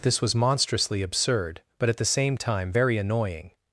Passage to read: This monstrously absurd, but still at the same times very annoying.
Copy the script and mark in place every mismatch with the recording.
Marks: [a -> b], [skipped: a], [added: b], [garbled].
This [added: was] monstrously absurd, but [skipped: still] at the same [times -> time] very annoying.